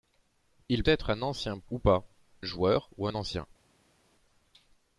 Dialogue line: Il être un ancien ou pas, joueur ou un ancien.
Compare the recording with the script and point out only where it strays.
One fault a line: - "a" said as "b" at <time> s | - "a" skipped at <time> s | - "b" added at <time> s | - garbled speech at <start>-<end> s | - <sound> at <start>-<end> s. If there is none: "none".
none